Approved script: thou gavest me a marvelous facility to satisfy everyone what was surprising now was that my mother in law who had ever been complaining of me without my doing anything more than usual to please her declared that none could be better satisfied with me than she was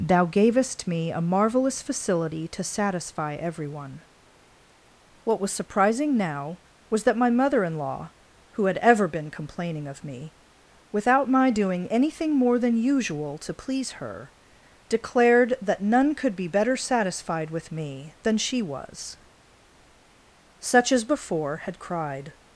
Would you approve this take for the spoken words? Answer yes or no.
no